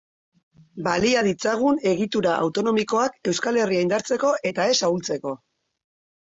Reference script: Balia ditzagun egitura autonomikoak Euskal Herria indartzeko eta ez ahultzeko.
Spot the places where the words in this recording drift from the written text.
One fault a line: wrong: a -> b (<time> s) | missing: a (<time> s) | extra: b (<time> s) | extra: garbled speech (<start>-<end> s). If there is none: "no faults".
no faults